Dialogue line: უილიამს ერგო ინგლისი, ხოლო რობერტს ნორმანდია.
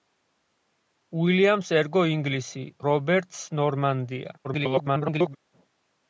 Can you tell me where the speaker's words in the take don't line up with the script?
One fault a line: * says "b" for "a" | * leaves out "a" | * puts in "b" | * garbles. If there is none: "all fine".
* leaves out "ხოლო"
* garbles